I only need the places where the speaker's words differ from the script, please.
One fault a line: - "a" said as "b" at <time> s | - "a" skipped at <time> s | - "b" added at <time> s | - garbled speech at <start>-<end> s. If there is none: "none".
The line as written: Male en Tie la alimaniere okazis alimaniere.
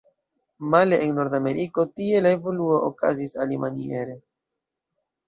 - "Nordameriko" added at 1.2 s
- "alimaniere" said as "evoluo" at 2.4 s